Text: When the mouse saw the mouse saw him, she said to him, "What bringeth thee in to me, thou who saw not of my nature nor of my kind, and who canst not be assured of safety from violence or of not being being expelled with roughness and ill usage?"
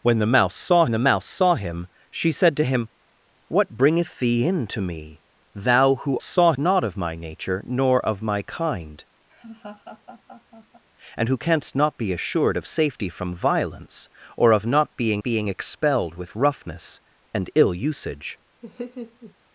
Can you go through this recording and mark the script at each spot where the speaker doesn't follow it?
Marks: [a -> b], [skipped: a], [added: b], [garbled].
When the mouse saw the mouse saw him, she said to him, "What bringeth thee in to me, thou who saw not of my nature nor of my kind, and who canst not be assured of safety from violence or of not being being expelled with roughness and ill usage?"